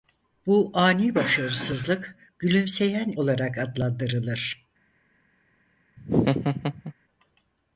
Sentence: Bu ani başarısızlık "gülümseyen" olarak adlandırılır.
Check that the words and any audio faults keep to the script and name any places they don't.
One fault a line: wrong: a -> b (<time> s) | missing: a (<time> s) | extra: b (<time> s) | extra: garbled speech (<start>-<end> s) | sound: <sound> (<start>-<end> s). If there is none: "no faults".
sound: laugh (6.0-6.9 s)